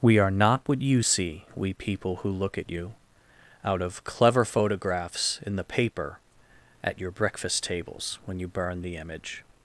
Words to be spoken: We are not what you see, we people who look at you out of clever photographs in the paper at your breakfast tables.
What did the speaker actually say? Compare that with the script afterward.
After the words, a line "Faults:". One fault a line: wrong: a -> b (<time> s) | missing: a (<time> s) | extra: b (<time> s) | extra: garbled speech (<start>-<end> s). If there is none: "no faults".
We are not what you see, we people who look at you out of clever photographs in the paper at your breakfast tables. When you burn the image
Faults:
extra: When you burn the image (8.3 s)